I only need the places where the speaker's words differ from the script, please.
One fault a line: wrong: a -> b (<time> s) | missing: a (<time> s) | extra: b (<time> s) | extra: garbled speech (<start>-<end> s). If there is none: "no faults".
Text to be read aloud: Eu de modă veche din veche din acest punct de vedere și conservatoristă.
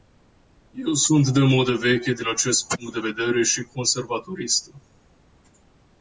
extra: sunt (0.9 s)
missing: veche din (2.3 s)